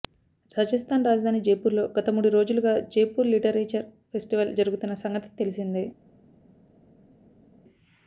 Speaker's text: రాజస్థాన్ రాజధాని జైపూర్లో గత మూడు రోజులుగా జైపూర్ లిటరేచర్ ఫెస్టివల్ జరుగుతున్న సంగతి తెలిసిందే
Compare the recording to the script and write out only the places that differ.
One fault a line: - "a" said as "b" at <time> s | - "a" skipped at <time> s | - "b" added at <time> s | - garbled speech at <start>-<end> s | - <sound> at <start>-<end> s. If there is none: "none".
none